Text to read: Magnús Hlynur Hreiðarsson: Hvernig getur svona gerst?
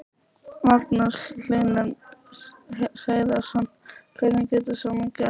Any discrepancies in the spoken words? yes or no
no